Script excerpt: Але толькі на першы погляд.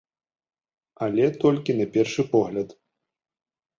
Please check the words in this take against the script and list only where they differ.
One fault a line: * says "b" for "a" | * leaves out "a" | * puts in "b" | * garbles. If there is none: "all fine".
all fine